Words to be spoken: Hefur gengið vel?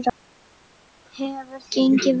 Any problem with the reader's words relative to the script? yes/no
no